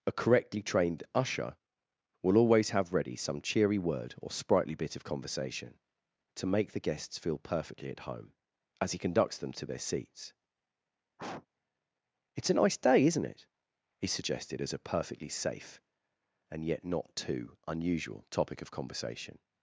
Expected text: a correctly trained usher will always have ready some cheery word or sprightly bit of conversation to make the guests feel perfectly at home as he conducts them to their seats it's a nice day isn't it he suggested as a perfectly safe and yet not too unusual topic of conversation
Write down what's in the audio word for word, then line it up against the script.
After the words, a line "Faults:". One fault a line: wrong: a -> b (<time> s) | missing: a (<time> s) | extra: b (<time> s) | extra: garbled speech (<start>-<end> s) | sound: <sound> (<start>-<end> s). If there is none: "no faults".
a correctly trained usher will always have ready some cheery word or sprightly bit of conversation to make the guests feel perfectly at home as he conducts them to their seats it's a nice day isn't it he suggested as a perfectly safe and yet not too unusual topic of conversation
Faults:
sound: sniff (11.2-11.5 s)